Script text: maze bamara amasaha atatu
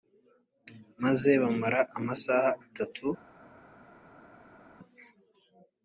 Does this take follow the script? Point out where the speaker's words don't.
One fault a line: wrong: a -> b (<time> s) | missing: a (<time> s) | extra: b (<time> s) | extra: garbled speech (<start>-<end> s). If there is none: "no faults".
no faults